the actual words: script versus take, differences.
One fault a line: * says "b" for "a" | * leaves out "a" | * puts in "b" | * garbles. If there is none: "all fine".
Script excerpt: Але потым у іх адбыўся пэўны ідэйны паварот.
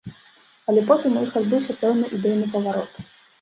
all fine